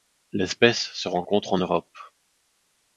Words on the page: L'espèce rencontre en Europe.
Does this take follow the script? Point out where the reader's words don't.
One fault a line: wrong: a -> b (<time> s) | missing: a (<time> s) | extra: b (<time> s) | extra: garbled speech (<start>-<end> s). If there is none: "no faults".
extra: se (0.9 s)